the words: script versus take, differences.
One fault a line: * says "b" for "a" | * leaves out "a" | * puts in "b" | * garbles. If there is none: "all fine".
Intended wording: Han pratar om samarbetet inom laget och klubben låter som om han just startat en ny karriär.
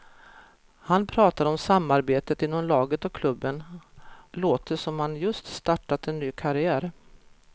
all fine